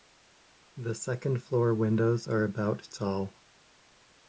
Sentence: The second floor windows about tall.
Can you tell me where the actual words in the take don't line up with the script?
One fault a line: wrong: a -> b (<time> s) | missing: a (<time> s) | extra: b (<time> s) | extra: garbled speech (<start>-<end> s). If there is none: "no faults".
extra: are (2.3 s)